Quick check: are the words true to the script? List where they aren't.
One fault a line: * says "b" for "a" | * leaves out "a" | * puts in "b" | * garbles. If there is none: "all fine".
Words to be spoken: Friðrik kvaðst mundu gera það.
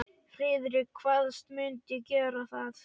all fine